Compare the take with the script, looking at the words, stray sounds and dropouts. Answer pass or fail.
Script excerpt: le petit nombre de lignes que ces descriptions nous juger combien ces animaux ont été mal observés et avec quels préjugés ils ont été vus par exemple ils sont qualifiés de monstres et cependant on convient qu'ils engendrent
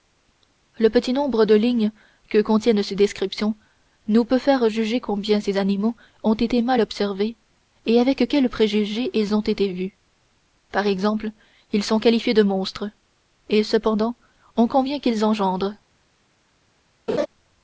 fail